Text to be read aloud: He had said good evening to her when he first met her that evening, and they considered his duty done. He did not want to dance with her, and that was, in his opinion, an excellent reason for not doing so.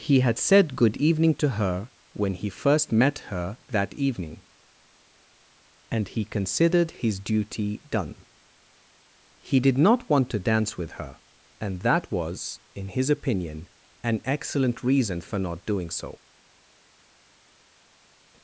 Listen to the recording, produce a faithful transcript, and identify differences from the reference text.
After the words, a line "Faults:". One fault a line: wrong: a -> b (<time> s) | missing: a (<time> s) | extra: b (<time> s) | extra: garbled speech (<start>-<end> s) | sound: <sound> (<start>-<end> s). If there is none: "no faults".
He had said good evening to her when he first met her that evening, and he considered his duty done. He did not want to dance with her, and that was, in his opinion, an excellent reason for not doing so.
Faults:
wrong: they -> he (6.1 s)